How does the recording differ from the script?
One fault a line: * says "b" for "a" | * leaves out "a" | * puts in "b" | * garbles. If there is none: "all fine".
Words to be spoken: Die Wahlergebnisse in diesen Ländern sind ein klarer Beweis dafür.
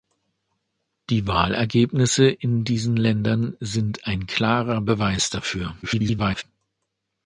* garbles